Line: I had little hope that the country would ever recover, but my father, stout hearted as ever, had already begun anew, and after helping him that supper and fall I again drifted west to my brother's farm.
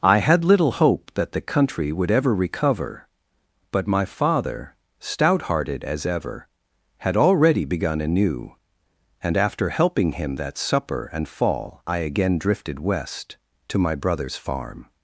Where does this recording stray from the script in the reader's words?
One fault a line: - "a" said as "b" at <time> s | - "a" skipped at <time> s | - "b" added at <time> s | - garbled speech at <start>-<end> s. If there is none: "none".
none